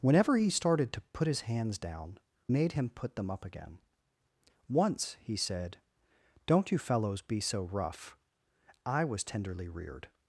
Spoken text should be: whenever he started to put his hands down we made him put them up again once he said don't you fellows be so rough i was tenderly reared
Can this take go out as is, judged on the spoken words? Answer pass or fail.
fail